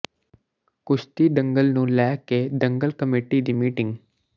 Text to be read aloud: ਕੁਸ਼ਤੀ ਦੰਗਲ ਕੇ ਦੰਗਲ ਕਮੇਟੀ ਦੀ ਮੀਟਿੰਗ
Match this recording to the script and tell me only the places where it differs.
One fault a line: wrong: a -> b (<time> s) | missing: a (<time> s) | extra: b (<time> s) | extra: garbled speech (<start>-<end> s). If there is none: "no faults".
extra: ਨੂੰ ਲੈ (1.7 s)